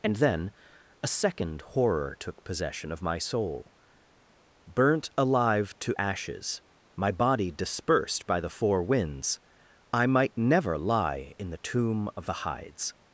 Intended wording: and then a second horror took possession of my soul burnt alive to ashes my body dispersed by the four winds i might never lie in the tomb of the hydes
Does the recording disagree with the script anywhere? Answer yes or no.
no